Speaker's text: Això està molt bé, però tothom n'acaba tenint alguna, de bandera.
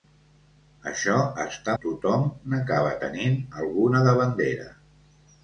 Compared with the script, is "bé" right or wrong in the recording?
wrong